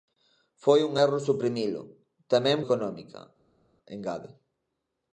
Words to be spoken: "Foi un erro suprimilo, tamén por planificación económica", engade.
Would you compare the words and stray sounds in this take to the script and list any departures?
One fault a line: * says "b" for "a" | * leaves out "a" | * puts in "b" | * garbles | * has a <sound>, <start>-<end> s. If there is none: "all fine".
* leaves out "por planificación"